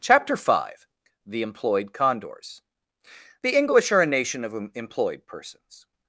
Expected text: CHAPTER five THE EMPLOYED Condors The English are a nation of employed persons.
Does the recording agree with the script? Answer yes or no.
yes